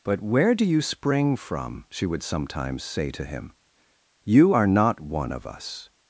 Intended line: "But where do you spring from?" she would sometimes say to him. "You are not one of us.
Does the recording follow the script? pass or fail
pass